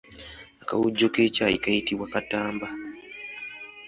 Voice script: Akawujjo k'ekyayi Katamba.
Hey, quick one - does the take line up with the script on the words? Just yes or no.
no